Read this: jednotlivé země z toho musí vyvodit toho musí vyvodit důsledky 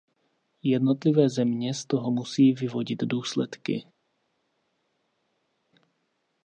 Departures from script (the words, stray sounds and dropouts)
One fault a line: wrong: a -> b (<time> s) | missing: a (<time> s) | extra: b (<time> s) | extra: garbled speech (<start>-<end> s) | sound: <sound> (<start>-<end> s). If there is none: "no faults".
missing: toho musí vyvodit (3.0 s)